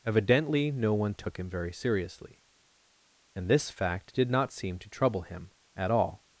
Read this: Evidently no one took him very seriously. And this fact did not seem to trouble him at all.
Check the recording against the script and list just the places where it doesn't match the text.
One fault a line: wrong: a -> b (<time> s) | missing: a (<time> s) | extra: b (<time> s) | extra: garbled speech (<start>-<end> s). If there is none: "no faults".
no faults